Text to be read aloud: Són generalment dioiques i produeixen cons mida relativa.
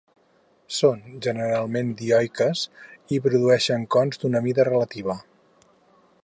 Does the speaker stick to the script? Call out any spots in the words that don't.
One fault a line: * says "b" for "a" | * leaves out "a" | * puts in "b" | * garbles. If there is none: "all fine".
* puts in "d'una"